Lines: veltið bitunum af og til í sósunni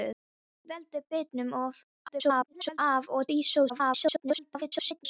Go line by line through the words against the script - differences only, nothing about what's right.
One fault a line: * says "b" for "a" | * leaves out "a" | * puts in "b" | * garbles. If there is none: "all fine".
* garbles
* leaves out "til"
* garbles